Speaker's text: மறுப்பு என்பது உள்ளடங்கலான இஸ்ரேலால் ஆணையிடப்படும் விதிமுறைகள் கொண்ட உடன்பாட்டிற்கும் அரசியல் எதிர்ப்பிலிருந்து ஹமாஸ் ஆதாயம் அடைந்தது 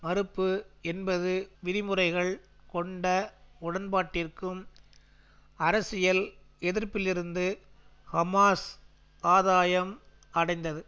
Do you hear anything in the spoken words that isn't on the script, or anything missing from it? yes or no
yes